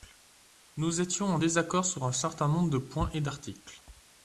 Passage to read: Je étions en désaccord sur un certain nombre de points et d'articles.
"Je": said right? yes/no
no